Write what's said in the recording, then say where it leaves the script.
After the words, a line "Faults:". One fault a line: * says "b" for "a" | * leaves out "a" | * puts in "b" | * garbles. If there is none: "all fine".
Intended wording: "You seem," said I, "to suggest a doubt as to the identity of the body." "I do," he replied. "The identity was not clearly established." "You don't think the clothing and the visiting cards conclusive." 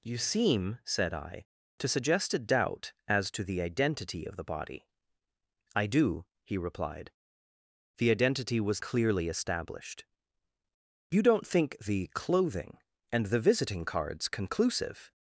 "You seem," said I, "to suggest a doubt as to the identity of the body." "I do," he replied. "The identity was clearly established." "You don't think the clothing and the visiting cards conclusive."
Faults:
* leaves out "not"